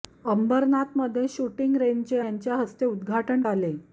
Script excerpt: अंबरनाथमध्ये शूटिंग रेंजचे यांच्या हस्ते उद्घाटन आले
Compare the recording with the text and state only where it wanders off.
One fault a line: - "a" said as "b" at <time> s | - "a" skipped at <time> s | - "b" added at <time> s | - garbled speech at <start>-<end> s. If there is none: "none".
none